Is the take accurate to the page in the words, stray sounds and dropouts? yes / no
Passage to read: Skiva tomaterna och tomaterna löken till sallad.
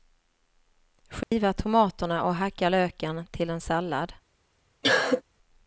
no